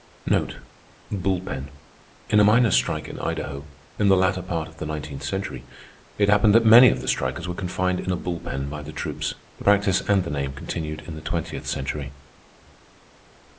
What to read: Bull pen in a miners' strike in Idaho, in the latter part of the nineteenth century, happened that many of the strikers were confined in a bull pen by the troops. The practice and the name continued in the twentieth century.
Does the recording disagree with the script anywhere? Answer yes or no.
yes